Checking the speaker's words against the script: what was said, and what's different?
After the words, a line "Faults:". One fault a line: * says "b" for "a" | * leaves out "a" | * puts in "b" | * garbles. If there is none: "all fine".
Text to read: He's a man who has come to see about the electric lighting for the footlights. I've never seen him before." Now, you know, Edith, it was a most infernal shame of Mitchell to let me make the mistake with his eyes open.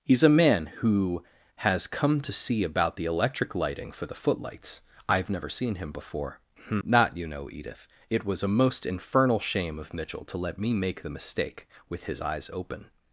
He's a man who has come to see about the electric lighting for the footlights. I've never seen him before." Not, you know, Edith, it was a most infernal shame of Mitchell to let me make the mistake with his eyes open.
Faults:
* says "Not" for "Now"